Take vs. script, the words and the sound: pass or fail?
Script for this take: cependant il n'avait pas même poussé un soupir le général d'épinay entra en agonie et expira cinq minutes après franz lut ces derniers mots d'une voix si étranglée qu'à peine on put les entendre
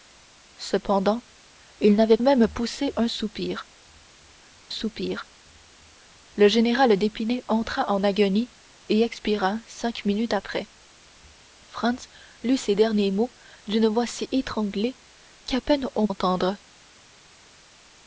fail